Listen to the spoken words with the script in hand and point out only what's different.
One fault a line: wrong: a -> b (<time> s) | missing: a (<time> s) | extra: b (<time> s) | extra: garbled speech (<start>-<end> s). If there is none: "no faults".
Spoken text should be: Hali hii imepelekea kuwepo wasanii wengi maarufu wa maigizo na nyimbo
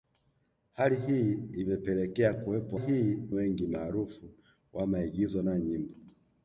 wrong: wasanii -> hii (2.7 s)